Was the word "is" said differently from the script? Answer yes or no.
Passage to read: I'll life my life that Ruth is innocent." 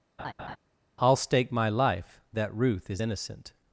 no